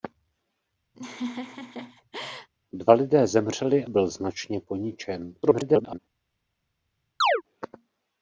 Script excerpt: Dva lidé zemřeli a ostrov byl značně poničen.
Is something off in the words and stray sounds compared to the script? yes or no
yes